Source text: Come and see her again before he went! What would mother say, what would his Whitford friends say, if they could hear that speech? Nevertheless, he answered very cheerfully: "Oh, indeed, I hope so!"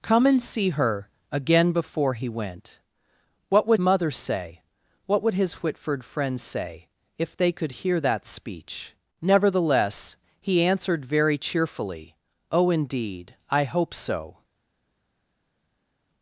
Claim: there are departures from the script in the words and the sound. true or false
false